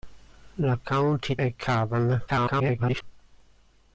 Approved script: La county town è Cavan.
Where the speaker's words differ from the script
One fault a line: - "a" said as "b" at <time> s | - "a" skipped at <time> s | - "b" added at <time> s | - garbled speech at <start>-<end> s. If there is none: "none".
- "town" skipped at 1.4 s
- garbled speech at 2.3-3.0 s